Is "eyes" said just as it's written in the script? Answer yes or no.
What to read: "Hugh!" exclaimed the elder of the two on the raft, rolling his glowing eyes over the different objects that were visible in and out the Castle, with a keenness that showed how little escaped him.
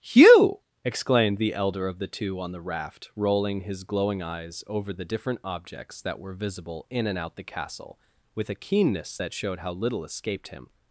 yes